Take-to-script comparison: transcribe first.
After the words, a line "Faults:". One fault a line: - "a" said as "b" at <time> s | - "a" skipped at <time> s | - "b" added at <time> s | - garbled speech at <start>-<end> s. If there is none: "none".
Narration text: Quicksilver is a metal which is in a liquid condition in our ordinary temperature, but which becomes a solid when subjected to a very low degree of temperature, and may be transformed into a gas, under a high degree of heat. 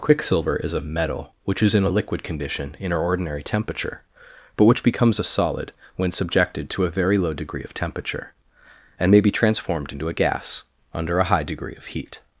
Quicksilver is a metal which is in a liquid condition in our ordinary temperature, but which becomes a solid when subjected to a very low degree of temperature, and may be transformed into a gas, under a high degree of heat.
Faults:
none